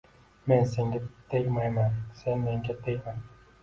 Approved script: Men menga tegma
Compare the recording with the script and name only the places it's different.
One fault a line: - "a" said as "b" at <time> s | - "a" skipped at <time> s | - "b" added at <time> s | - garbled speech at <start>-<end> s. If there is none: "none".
- "senga tegmayman sen" added at 0.7 s